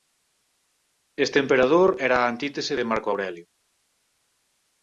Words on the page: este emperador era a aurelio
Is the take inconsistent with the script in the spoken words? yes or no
yes